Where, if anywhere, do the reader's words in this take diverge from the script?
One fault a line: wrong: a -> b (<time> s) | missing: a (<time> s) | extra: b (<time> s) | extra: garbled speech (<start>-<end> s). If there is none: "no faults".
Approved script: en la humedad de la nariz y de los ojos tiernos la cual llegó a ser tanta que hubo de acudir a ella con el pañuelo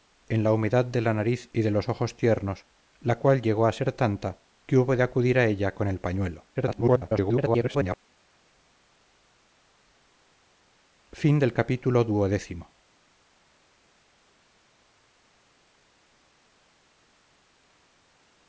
extra: garbled speech (6.5-8.0 s)